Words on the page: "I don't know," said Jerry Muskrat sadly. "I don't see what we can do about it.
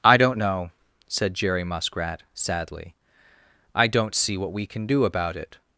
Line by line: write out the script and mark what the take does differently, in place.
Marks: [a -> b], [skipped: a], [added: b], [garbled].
"I don't know," said Jerry Muskrat sadly. "I don't see what we can do about it.